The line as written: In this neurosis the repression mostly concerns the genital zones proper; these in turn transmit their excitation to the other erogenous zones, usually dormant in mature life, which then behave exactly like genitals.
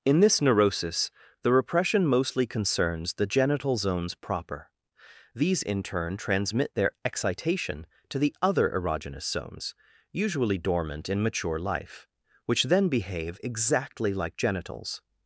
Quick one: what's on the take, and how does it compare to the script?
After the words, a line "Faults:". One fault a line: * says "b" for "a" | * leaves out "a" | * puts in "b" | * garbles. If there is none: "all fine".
In this neurosis the repression mostly concerns the genital zones proper; these in turn transmit their excitation to the other erogenous zones, usually dormant in mature life, which then behave exactly like genitals.
Faults:
all fine